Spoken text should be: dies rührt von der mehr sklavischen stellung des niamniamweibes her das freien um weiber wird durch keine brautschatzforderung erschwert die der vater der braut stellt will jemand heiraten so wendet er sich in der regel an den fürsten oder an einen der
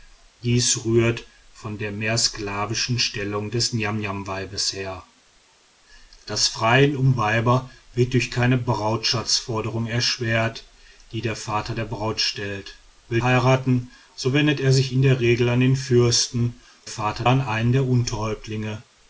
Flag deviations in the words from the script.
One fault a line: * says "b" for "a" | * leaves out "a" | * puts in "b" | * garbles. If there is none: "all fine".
* leaves out "jemand"
* says "vater" for "oder"